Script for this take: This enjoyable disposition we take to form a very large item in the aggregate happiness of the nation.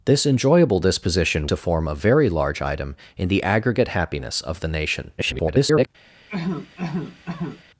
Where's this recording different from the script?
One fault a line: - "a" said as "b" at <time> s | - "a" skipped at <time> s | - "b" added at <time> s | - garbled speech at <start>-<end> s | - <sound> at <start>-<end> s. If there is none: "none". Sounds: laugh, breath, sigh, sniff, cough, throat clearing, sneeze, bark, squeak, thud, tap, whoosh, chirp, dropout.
- "we take" skipped at 1.5 s
- garbled speech at 5.2-5.9 s
- cough at 6.3-7.6 s